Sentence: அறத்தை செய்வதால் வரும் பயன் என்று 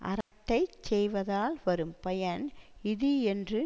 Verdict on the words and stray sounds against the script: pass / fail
fail